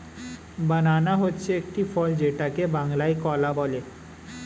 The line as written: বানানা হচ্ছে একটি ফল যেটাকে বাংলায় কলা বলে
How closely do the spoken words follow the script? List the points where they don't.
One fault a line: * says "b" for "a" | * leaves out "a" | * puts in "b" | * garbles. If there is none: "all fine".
all fine